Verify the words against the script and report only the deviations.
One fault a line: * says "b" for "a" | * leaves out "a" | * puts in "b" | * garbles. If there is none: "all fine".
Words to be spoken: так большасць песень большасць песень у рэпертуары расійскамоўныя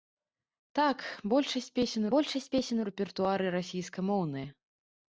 all fine